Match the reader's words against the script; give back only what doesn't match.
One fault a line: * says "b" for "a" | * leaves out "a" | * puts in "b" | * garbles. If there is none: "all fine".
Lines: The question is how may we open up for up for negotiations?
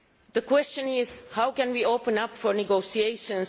* says "can" for "may"
* leaves out "up for"